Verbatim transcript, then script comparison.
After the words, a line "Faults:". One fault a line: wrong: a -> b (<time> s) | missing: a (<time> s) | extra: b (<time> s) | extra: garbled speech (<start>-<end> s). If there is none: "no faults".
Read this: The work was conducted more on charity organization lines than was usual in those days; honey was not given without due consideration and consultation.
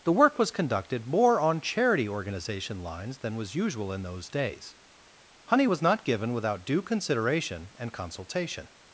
The work was conducted more on charity organization lines than was usual in those days; honey was not given without due consideration and consultation.
Faults:
no faults